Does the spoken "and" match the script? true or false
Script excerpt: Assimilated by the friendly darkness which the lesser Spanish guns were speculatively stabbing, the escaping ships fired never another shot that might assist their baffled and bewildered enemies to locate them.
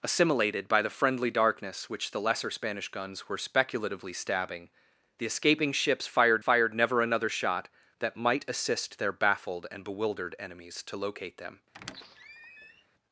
true